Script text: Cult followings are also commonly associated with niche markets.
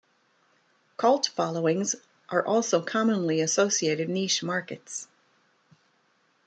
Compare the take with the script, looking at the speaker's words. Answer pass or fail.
fail